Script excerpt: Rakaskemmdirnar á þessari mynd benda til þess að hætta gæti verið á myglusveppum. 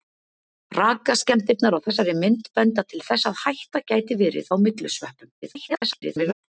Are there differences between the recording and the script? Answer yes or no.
yes